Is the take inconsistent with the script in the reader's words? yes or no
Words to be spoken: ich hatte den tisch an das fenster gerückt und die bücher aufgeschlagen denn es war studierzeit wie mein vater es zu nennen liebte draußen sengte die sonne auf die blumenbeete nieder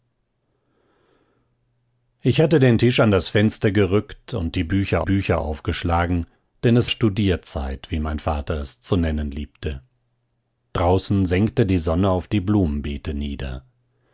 yes